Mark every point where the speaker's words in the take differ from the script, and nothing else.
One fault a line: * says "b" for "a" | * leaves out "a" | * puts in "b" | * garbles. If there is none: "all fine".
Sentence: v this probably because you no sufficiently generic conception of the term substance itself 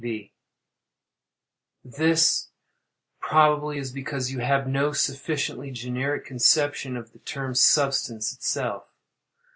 * puts in "is"
* puts in "have"